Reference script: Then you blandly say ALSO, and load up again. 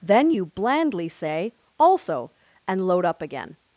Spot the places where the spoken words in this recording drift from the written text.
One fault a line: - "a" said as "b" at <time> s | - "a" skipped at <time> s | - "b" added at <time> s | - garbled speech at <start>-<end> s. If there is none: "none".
none